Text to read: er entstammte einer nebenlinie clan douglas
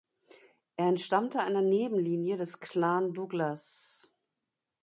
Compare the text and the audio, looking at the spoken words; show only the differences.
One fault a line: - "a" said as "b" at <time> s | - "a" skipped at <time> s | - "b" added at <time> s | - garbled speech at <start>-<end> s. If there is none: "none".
- "des" added at 2.4 s